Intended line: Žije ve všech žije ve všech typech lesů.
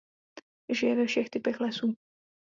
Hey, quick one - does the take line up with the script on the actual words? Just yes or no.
no